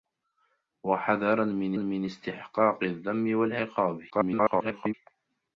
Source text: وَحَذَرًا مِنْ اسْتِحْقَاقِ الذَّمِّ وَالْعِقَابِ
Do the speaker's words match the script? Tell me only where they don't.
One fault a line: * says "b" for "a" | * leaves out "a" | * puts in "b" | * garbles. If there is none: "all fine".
* puts in "مِنْ"
* garbles